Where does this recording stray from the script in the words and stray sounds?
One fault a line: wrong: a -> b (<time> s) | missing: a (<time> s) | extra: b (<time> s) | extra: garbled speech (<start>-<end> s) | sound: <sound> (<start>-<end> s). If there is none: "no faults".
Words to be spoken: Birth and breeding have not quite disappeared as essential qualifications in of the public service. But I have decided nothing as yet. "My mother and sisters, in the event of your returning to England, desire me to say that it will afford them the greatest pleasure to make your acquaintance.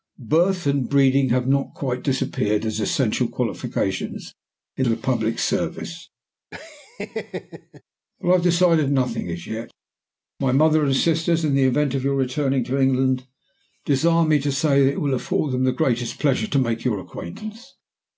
sound: laugh (6.5-7.8 s)